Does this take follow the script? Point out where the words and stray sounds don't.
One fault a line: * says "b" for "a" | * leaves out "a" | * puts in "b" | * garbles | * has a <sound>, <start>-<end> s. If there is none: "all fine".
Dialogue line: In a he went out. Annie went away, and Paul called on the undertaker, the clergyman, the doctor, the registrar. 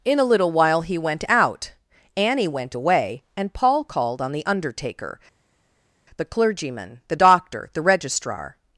* puts in "little while"